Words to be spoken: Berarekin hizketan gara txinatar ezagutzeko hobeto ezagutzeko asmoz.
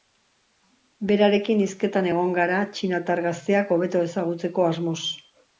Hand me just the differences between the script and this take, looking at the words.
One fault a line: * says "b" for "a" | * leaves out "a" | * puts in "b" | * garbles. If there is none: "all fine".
* puts in "egon"
* says "gazteak" for "ezagutzeko"